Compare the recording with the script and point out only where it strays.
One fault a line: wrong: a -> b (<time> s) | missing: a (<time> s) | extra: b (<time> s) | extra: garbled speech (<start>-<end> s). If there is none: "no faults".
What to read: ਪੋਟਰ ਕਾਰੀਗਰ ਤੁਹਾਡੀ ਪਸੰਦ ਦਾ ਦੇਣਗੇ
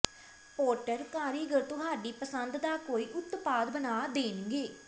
extra: ਕੋਈ ਉਤਪਾਦ ਬਣਾ (2.8 s)